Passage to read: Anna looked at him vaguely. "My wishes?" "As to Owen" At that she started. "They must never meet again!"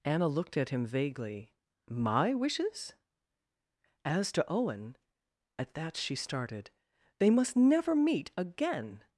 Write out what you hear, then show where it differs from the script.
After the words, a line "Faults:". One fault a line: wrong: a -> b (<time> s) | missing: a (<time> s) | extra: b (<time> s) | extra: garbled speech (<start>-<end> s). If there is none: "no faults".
Anna looked at him vaguely. "My wishes?" "As to Owen" At that she started. "They must never meet again!"
Faults:
no faults